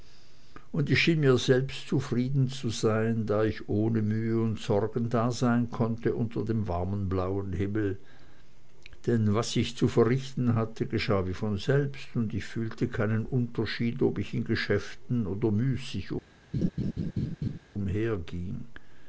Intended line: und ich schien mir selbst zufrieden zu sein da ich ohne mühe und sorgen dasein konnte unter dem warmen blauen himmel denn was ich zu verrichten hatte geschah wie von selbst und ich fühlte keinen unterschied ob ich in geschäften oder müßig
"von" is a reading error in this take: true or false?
false